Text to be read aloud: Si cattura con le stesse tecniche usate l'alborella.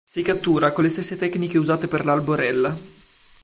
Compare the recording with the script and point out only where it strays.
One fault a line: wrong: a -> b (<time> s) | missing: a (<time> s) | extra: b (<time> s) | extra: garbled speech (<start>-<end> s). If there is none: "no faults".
extra: per (1.9 s)